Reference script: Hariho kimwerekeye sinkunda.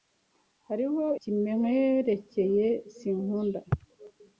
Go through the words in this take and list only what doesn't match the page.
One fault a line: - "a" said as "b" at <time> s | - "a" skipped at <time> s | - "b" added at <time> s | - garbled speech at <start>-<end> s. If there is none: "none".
none